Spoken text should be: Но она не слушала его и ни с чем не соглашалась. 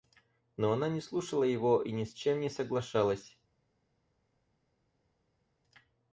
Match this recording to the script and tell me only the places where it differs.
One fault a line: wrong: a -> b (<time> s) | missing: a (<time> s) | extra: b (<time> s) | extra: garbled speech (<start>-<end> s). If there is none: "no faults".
no faults